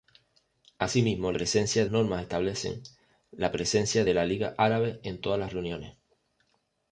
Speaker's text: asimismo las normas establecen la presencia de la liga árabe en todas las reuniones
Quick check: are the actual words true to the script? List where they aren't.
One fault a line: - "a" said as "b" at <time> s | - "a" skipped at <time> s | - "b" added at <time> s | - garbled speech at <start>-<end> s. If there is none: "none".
- "las" said as "presencia" at 1.3 s